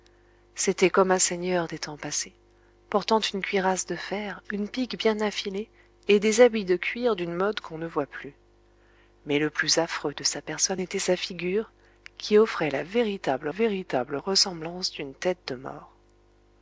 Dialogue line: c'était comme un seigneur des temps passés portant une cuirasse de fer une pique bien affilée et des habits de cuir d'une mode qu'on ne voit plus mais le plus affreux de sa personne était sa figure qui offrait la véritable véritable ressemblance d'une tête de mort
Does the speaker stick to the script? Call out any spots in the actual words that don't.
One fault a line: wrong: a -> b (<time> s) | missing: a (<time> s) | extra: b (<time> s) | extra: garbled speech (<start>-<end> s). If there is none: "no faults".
no faults